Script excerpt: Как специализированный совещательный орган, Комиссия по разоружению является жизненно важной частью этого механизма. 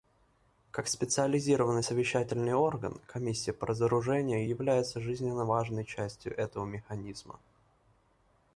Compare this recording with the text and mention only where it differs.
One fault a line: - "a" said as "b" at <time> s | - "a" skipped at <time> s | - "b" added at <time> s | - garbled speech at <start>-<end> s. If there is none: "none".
none